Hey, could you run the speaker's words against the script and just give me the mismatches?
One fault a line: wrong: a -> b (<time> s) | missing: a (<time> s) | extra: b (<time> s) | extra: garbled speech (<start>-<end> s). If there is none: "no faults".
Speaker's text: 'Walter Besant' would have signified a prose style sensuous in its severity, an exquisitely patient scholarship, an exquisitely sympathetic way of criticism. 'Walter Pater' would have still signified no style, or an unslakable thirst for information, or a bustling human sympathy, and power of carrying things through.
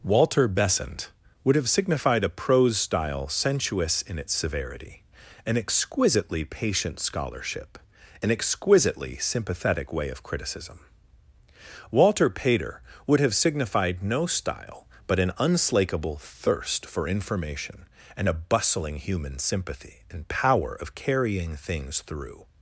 missing: still (13.3 s)
wrong: or -> but (15.1 s)
wrong: or -> and (18.2 s)